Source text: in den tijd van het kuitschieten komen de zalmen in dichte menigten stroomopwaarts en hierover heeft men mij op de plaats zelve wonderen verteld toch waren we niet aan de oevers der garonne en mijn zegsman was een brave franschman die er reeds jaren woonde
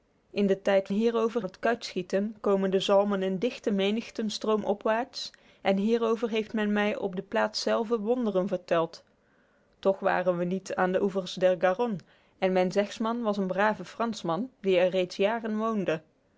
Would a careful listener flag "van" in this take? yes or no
yes